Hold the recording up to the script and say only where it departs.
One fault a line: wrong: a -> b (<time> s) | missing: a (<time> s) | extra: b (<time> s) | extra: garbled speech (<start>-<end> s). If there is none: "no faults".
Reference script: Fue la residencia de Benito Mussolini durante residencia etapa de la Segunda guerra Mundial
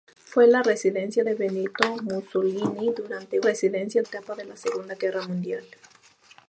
no faults